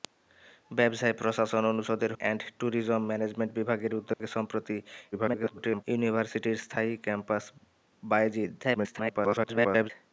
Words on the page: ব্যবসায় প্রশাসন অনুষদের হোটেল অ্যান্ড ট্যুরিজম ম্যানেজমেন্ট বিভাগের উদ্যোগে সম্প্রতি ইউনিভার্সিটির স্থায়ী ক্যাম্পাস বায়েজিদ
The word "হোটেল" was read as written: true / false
false